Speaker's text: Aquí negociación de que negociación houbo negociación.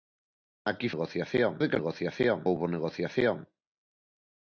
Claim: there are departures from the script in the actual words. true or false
false